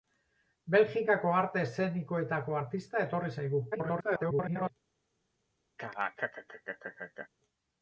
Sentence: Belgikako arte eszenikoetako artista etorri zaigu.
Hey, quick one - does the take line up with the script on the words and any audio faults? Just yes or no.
no